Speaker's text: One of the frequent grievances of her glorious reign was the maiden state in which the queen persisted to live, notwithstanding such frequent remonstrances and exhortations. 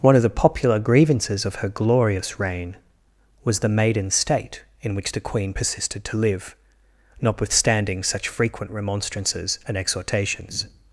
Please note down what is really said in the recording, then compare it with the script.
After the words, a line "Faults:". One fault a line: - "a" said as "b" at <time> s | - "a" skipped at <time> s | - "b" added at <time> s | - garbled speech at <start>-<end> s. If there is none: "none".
One of the popular grievances of her glorious reign was the maiden state in which the queen persisted to live, notwithstanding such frequent remonstrances and exhortations.
Faults:
- "frequent" said as "popular" at 0.3 s